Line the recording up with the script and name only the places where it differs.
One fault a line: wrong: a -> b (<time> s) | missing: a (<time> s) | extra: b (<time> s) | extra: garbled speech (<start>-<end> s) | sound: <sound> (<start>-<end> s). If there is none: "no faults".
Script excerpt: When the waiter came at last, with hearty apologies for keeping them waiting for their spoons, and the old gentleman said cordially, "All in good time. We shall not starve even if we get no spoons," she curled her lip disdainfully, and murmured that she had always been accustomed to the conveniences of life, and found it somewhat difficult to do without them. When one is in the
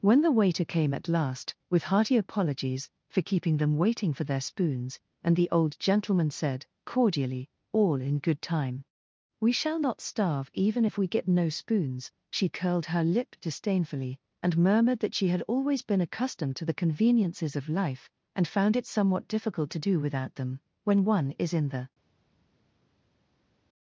no faults